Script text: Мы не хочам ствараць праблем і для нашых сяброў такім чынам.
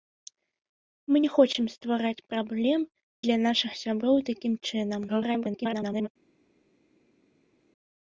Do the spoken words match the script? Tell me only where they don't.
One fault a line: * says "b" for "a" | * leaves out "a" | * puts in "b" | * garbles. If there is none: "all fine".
* leaves out "і"
* garbles